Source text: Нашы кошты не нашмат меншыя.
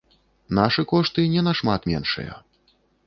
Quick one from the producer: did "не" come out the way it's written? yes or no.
yes